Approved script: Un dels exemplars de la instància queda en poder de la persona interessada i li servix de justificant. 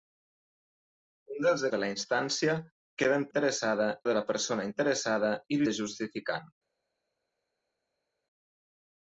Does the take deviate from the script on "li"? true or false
true